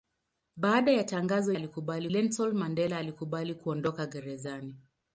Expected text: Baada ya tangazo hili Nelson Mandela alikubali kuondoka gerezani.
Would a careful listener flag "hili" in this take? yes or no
yes